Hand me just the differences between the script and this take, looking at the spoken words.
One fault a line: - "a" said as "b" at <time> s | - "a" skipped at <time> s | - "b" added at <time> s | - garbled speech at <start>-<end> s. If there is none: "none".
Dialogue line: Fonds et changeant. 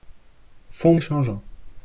none